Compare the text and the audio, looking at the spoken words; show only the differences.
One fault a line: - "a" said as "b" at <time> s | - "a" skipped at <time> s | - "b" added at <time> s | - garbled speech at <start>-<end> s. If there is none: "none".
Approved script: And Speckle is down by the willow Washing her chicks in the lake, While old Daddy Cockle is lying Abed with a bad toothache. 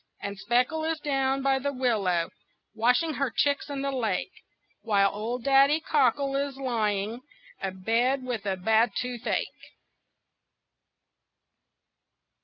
none